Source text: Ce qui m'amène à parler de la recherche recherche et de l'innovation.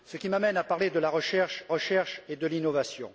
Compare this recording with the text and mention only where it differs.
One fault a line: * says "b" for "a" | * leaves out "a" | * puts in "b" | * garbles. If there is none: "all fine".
all fine